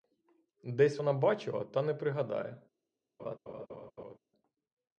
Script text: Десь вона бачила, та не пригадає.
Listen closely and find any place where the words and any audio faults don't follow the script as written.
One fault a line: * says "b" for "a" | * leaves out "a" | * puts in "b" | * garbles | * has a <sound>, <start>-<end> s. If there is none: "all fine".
* has a laugh, 3.2-4.2 s